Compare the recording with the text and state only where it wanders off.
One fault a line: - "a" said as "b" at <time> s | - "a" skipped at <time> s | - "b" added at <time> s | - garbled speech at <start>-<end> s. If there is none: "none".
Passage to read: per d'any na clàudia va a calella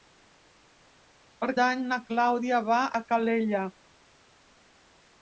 none